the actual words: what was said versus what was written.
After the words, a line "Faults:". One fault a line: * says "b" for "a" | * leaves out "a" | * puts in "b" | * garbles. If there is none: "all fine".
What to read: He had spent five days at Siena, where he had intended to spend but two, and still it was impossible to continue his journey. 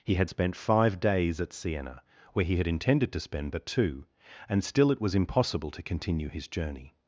He had spent five days at Siena, where he had intended to spend but two, and still it was impossible to continue his journey.
Faults:
all fine